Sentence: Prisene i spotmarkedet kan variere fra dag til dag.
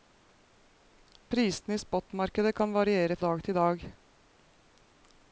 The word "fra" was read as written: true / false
false